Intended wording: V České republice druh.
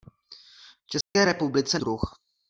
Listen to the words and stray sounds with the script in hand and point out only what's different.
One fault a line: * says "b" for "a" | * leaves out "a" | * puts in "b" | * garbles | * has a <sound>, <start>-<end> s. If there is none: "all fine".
* has a dropout, 1.0-1.2 s